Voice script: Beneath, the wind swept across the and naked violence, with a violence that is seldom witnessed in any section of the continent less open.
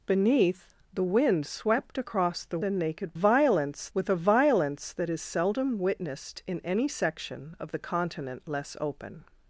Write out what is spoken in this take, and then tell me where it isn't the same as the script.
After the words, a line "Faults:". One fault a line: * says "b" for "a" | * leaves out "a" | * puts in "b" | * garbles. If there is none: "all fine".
Beneath, the wind swept across the and naked violence, with a violence that is seldom witnessed in any section of the continent less open.
Faults:
all fine